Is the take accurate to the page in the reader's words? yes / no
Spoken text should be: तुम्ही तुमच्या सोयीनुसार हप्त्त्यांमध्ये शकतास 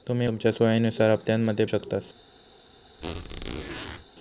yes